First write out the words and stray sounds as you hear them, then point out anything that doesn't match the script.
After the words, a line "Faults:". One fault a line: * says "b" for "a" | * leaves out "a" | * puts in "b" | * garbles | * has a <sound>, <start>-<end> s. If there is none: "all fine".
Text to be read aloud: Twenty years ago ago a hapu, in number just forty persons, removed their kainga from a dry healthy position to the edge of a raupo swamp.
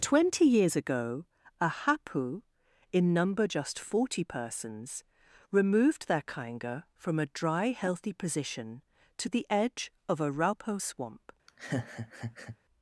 Twenty years ago a hapu, in number just forty persons, removed their kainga from a dry healthy position to the edge of a raupo swamp.
Faults:
* leaves out "ago"
* has a laugh, 11.5-12.6 s